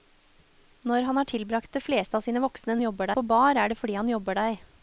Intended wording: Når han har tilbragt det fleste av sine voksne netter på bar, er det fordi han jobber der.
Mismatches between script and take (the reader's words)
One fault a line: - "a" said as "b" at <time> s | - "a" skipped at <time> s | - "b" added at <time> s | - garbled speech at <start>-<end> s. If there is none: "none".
- "netter" said as "jobber" at 2.8 s